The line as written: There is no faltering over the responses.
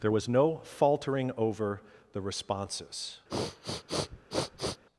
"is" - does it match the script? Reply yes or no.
no